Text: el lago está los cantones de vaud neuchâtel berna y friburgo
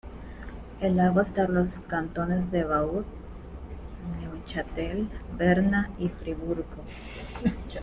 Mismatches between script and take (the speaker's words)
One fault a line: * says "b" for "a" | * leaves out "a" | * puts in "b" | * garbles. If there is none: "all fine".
all fine